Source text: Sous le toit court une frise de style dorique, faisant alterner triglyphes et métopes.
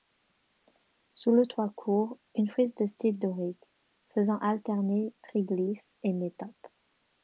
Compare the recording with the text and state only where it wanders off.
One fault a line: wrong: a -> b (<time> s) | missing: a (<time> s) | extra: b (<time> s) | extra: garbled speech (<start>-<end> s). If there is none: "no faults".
no faults